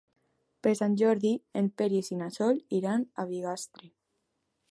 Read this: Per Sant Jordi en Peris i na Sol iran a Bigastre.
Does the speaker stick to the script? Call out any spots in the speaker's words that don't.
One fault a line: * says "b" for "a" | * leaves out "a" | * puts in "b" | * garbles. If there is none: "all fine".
all fine